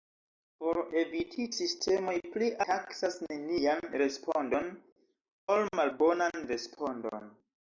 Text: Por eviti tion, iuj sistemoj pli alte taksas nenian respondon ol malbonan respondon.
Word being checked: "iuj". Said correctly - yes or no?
no